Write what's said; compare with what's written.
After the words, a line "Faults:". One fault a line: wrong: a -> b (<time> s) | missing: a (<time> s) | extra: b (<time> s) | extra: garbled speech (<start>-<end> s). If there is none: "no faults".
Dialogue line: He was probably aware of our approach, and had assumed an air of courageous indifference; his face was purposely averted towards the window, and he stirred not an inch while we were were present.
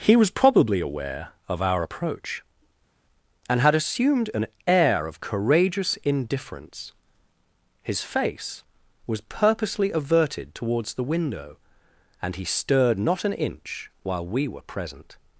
He was probably aware of our approach, and had assumed an air of courageous indifference; his face was purposely averted towards the window, and he stirred not an inch while we were present.
Faults:
missing: were (14.6 s)